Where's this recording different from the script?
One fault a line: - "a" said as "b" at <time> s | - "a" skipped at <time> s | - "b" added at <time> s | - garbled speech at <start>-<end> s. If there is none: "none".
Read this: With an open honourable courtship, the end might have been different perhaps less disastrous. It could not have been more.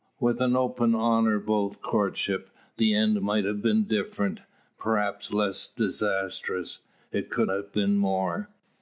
- "not" skipped at 7.5 s